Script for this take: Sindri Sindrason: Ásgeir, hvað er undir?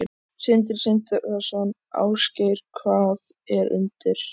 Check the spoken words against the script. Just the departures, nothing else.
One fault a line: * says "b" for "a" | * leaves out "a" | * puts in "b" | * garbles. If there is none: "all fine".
all fine